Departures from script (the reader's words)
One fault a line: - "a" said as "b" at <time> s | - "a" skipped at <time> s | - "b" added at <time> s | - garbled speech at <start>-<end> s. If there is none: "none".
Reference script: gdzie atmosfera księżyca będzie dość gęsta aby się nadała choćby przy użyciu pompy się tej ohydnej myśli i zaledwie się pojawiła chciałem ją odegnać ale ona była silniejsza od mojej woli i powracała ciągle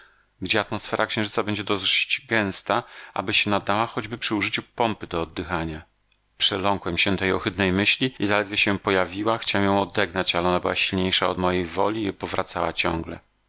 - "do oddychania przeląkłem" added at 5.1 s